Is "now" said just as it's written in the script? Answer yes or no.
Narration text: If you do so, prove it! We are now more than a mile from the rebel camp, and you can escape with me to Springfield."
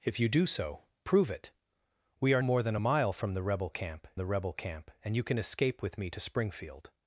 no